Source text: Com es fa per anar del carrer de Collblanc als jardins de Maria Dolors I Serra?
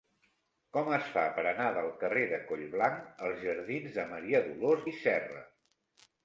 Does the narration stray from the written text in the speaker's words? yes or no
no